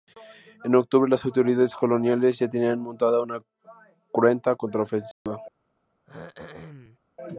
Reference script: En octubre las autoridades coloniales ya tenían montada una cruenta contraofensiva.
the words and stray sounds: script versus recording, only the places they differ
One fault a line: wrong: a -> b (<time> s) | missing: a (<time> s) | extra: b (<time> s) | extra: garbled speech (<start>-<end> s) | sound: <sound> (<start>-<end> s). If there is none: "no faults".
sound: dropout (5.1-5.3 s)
sound: throat clearing (6.1-7.0 s)